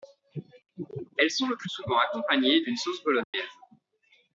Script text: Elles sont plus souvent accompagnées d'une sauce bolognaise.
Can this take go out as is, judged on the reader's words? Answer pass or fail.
fail